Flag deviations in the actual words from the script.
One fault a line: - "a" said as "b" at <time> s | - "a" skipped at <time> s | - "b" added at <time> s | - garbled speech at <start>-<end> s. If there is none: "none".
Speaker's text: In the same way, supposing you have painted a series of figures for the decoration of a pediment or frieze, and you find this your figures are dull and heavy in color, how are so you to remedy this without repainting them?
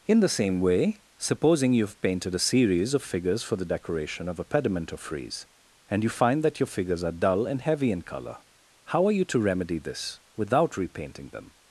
- "this" said as "that" at 6.4 s
- "so" skipped at 9.1 s